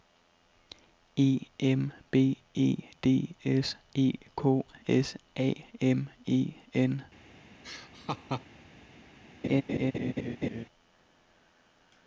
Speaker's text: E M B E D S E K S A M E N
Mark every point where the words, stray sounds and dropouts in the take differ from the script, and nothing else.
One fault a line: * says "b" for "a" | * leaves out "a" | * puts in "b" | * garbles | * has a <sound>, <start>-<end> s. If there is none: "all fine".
* has a laugh, 7.6-8.5 s
* has a laugh, 9.4-10.7 s